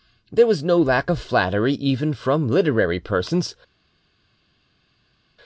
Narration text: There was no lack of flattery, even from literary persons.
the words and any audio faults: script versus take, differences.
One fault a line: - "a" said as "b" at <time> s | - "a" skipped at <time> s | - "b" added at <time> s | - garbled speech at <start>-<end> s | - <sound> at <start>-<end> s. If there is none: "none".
none